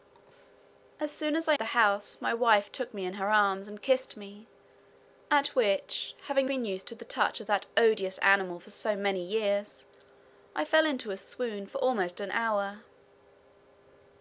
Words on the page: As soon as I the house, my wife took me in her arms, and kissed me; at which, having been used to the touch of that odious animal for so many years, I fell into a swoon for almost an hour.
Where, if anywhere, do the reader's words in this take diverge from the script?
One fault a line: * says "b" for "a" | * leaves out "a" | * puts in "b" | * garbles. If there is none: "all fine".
all fine